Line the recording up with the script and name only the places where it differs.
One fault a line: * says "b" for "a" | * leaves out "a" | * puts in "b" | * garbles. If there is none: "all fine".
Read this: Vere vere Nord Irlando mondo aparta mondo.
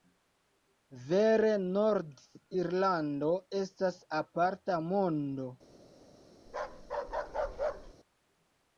* leaves out "vere"
* says "estas" for "mondo"